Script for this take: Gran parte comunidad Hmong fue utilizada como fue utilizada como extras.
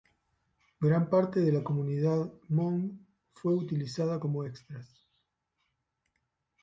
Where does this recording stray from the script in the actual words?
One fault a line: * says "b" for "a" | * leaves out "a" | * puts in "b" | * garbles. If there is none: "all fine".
* puts in "de la"
* leaves out "fue utilizada como"